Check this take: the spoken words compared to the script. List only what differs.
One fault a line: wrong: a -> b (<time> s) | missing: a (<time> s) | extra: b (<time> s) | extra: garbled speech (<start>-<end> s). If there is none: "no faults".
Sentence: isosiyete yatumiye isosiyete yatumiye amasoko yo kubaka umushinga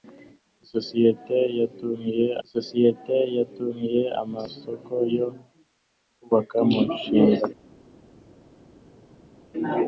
no faults